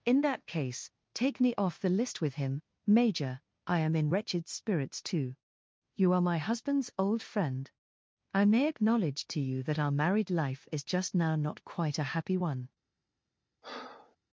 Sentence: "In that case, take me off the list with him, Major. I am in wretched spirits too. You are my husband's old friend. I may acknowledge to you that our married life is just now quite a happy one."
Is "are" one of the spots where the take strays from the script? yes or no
no